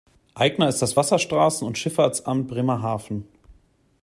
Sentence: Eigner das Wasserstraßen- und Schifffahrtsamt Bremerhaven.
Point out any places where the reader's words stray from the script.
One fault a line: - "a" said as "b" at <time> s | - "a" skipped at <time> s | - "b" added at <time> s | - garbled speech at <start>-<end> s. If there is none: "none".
- "ist" added at 0.7 s